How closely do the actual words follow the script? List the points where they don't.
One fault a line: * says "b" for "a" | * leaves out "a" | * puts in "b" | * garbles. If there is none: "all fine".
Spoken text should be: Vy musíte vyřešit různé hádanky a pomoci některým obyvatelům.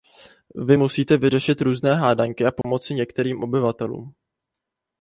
all fine